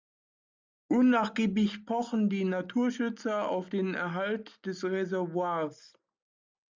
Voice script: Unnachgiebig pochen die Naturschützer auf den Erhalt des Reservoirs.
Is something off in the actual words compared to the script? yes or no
no